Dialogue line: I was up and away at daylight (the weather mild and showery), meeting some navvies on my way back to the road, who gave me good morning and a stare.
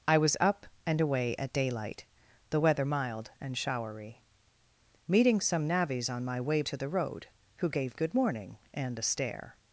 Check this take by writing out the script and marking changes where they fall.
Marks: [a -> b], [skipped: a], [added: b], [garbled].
I was up and away at daylight (the weather mild and showery), meeting some navvies on my way [skipped: back] to the road, who gave [skipped: me] good morning and a stare.